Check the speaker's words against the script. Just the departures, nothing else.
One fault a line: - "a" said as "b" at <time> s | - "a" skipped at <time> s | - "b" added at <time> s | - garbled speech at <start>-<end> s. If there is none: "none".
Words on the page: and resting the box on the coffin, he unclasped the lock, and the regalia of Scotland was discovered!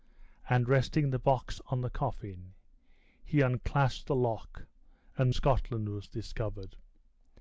- "the regalia of" skipped at 5.3 s